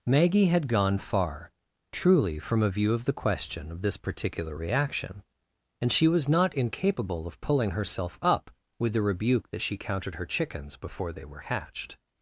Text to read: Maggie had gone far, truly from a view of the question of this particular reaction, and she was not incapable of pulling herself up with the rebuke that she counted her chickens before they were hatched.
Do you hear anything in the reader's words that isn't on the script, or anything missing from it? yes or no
no